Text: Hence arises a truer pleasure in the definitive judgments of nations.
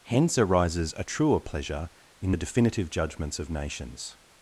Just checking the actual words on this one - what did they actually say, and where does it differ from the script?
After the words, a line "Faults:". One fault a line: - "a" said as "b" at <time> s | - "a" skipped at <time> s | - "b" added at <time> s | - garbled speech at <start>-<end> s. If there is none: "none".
Hence arises a truer pleasure in the definitive judgments of nations.
Faults:
none